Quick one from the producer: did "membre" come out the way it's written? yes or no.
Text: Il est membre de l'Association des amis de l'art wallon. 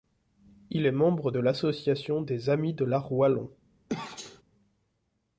yes